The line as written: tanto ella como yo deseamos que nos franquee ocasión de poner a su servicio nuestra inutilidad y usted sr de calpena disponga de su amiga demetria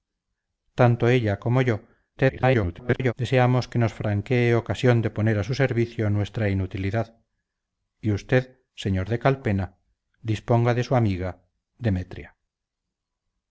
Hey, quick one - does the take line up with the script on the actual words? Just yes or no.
no